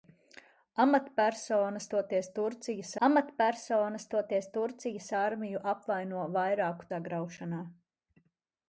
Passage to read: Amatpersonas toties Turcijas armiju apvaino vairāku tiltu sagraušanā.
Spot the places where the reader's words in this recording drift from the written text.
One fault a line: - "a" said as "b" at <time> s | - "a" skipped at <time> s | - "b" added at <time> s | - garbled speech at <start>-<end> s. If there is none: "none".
- "amatpersonas toties Turcijas" added at 3.1 s
- "tiltu" skipped at 6.9 s